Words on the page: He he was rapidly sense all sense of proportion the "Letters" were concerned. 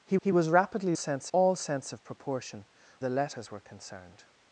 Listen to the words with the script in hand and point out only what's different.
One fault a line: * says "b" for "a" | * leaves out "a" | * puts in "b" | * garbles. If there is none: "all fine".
all fine